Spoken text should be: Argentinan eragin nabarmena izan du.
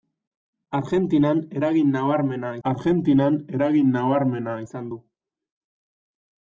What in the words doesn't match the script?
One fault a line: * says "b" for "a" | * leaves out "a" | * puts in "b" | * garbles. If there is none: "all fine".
* puts in "argentinan eragin nabarmena"